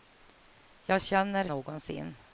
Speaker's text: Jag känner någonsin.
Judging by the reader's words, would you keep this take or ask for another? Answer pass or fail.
pass